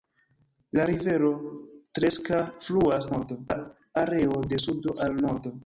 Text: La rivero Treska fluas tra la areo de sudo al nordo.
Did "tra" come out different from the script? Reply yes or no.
yes